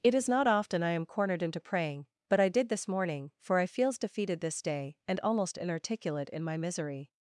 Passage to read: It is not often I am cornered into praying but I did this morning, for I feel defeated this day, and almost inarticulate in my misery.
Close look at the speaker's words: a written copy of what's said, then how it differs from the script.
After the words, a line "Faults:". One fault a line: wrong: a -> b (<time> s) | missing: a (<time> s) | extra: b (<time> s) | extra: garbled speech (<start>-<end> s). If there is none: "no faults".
It is not often I am cornered into praying but I did this morning, for I feels defeated this day, and almost inarticulate in my misery.
Faults:
wrong: feel -> feels (3.6 s)